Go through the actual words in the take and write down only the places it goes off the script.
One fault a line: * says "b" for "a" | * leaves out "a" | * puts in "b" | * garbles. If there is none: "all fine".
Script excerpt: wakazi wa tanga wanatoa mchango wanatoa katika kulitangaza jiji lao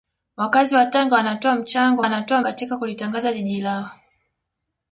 all fine